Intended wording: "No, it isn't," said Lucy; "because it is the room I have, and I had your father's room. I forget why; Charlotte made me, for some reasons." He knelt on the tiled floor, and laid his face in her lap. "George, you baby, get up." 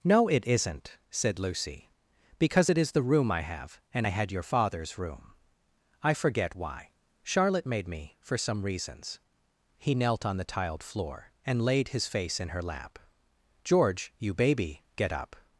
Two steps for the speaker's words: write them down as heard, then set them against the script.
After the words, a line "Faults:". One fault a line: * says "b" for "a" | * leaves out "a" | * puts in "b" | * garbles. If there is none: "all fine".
"No, it isn't," said Lucy; "because it is the room I have, and I had your father's room. I forget why; Charlotte made me, for some reasons." He knelt on the tiled floor, and laid his face in her lap. "George, you baby, get up."
Faults:
all fine